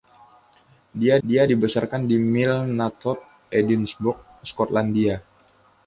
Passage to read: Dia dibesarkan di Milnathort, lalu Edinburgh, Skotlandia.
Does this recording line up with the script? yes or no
no